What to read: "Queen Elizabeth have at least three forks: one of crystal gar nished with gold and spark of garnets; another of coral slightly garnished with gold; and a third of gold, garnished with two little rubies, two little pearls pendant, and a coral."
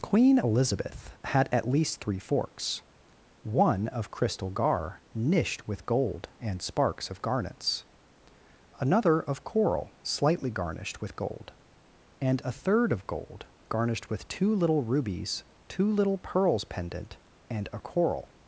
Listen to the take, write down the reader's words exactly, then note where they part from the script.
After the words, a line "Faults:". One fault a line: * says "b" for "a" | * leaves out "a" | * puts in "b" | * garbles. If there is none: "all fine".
"Queen Elizabeth had at least three forks: one of crystal gar nished with gold and sparks of garnets; another of coral slightly garnished with gold; and a third of gold, garnished with two little rubies, two little pearls pendant, and a coral."
Faults:
* says "had" for "have"
* says "sparks" for "spark"